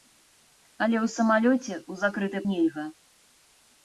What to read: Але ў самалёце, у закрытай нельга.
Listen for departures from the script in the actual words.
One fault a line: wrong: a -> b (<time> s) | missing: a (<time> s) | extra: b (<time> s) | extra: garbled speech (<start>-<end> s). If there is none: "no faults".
no faults